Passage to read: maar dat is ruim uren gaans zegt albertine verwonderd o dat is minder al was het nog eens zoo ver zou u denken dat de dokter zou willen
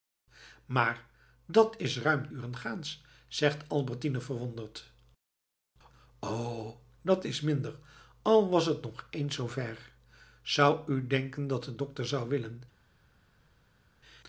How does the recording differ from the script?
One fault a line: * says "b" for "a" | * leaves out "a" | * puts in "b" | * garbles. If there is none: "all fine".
all fine